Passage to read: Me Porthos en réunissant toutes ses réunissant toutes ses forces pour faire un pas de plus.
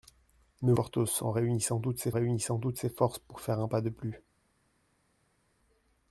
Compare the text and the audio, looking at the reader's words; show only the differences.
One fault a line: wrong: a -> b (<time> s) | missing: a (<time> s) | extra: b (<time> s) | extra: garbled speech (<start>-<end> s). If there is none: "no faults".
no faults